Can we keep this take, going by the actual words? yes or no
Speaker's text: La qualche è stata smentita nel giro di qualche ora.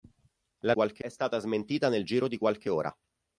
yes